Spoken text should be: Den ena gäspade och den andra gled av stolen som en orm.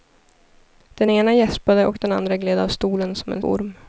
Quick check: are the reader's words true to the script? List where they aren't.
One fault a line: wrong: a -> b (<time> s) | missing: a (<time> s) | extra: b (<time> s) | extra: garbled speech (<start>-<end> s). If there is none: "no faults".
no faults